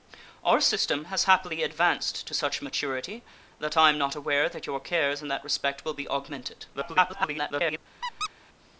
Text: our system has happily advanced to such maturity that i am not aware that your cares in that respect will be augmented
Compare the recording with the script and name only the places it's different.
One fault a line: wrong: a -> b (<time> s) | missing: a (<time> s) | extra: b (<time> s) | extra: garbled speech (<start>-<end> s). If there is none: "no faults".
extra: garbled speech (6.7-7.8 s)